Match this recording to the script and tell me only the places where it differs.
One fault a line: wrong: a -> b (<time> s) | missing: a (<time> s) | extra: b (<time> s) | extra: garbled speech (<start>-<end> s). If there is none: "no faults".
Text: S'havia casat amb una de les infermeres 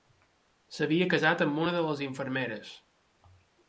no faults